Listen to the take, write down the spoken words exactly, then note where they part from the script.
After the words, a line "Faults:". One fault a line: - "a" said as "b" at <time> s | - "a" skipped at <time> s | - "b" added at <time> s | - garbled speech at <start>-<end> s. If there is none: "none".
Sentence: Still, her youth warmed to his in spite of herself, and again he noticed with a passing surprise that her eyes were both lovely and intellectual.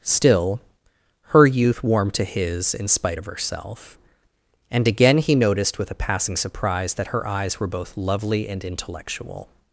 Still, her youth warmed to his in spite of herself, and again he noticed with a passing surprise that her eyes were both lovely and intellectual.
Faults:
none